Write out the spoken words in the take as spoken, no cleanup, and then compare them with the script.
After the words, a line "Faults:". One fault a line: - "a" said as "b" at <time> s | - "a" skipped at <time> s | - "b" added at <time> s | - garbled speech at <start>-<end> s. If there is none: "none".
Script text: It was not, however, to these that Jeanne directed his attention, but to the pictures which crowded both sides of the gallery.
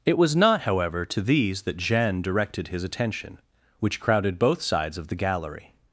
It was not, however, to these that Jeanne directed his attention, which crowded both sides of the gallery.
Faults:
- "but to the pictures" skipped at 3.4 s